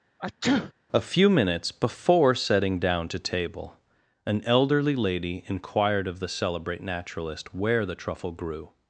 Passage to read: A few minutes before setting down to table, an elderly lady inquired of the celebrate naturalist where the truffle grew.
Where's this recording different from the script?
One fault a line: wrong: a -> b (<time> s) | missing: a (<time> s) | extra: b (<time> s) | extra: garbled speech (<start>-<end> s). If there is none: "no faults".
no faults